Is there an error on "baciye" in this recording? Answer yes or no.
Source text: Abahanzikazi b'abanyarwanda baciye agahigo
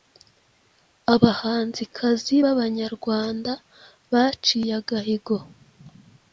no